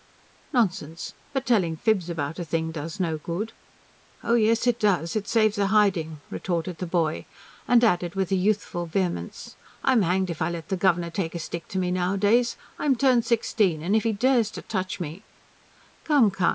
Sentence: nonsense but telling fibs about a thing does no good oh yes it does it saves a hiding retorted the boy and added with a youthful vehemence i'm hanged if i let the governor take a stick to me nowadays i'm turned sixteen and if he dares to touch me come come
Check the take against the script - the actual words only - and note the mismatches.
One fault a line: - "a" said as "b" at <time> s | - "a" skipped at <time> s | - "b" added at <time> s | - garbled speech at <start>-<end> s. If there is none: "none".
none